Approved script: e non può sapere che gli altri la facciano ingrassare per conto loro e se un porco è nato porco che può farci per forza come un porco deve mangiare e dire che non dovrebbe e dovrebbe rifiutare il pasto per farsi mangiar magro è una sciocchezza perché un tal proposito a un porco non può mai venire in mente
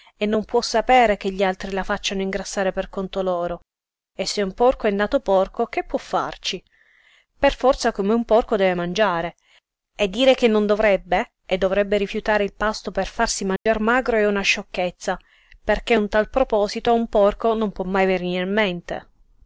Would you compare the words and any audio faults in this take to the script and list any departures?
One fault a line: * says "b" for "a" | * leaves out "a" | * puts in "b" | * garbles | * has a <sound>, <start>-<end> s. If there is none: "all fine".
* has a dropout, 13.6-13.7 s